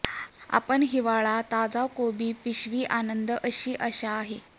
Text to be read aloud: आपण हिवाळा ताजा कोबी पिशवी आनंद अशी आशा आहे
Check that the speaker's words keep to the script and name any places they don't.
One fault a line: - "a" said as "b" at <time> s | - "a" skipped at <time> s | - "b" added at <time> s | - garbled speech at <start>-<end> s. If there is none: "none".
none